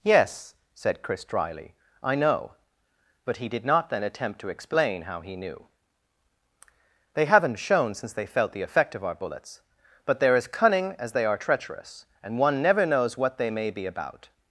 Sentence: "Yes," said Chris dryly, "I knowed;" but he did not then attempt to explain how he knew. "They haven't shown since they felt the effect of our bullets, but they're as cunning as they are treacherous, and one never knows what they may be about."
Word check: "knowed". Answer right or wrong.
wrong